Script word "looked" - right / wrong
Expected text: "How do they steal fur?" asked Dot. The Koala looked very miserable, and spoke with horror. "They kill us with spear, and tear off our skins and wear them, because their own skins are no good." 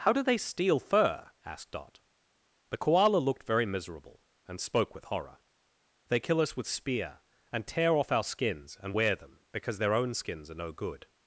right